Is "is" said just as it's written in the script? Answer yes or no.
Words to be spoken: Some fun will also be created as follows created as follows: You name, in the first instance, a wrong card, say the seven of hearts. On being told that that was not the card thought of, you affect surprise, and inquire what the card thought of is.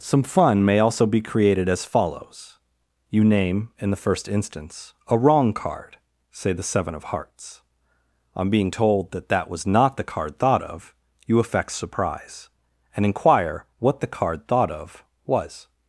no